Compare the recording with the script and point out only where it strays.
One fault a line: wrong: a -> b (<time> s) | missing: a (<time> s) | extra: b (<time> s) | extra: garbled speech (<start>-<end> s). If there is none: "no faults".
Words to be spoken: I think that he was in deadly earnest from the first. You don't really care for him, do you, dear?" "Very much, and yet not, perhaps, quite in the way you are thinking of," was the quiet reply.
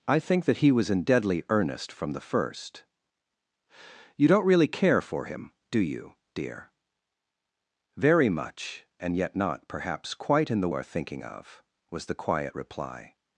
missing: way you (10.7 s)